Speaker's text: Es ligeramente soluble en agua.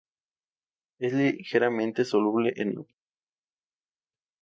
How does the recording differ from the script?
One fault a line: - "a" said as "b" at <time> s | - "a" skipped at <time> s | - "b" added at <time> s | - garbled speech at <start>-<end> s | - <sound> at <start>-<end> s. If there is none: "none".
none